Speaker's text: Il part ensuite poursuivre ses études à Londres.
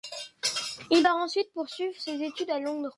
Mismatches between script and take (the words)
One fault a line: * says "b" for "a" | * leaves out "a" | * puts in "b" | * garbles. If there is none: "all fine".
all fine